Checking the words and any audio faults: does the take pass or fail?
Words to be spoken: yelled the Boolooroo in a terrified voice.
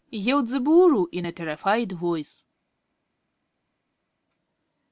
pass